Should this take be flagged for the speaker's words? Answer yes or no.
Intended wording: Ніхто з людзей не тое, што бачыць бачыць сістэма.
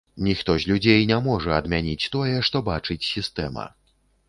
yes